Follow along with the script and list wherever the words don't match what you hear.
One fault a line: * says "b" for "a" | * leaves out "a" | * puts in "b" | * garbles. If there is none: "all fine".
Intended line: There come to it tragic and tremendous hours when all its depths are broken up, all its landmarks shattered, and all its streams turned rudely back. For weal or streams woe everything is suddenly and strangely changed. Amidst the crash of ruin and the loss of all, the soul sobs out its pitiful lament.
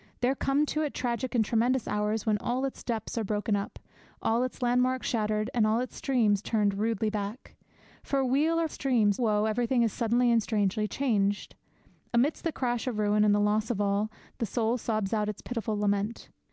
all fine